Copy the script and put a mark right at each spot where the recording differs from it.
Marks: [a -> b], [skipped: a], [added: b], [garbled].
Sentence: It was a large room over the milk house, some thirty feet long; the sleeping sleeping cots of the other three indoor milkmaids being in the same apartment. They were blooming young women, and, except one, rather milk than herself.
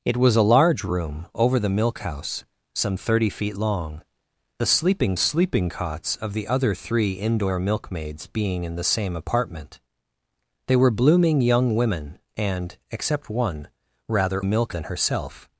It was a large room over the milk house, some thirty feet long; the sleeping sleeping cots of the other three indoor milkmaids being in the same apartment. They were blooming young women, and, except one, rather milk than herself.